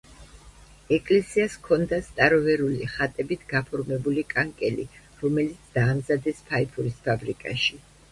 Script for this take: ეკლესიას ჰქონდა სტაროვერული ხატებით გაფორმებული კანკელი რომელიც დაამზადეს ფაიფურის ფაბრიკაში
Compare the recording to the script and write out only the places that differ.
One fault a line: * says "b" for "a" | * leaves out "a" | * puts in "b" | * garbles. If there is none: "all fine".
all fine